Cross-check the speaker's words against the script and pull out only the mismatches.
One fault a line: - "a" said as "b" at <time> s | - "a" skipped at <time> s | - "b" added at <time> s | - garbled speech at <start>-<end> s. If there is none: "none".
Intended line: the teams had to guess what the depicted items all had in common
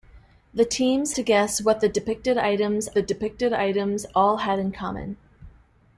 - "had" skipped at 1.1 s
- "the depicted items" added at 2.9 s